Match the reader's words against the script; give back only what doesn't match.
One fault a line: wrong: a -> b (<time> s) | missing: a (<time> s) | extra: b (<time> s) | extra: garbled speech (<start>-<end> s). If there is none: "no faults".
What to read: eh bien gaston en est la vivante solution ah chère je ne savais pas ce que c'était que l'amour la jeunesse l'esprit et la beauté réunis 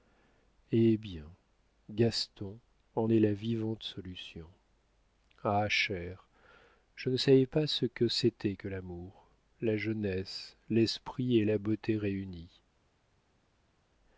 no faults